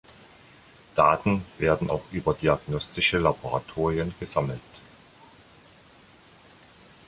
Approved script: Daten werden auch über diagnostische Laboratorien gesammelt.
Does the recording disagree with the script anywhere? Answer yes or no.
no